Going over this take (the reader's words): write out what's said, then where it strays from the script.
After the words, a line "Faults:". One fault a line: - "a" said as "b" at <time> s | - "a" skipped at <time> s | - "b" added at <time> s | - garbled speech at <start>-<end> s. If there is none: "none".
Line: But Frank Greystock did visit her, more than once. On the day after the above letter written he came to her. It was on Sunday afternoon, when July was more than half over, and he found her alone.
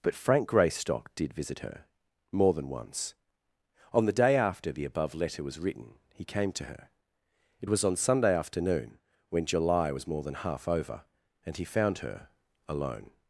But Frank Greystock did visit her, more than once. On the day after the above letter was written he came to her. It was on Sunday afternoon, when July was more than half over, and he found her alone.
Faults:
- "was" added at 5.4 s